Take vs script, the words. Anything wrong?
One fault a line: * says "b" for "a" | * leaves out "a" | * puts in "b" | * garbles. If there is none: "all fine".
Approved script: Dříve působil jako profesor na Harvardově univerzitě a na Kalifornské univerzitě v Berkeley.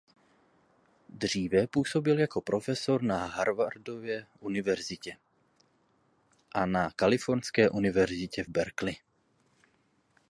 all fine